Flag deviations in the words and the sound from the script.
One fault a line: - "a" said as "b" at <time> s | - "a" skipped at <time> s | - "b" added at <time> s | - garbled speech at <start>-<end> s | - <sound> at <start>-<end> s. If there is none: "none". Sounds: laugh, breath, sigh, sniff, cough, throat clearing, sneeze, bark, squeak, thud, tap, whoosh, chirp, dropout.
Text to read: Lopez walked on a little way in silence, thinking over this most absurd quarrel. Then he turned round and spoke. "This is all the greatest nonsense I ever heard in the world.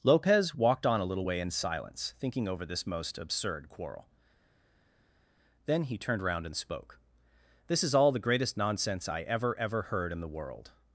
- "ever" added at 9.6 s